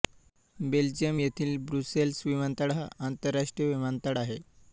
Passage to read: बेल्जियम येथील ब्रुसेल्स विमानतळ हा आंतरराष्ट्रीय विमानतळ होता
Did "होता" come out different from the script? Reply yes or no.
yes